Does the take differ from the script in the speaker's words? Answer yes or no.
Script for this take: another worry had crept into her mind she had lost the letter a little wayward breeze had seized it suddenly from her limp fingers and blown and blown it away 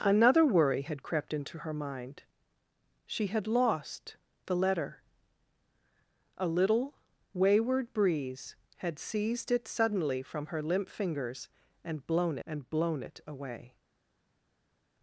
no